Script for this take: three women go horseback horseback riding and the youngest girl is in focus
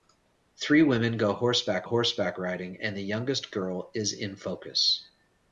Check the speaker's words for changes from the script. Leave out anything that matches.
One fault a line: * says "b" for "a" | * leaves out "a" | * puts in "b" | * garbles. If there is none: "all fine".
all fine